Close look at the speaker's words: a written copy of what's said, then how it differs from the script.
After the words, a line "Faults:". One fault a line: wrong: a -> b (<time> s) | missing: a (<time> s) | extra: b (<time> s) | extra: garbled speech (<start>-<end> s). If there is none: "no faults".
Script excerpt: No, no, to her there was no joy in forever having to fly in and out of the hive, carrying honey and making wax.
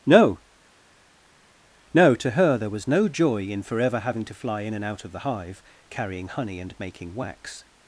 No, no, to her there was no joy in forever having to fly in and out of the hive, carrying honey and making wax.
Faults:
no faults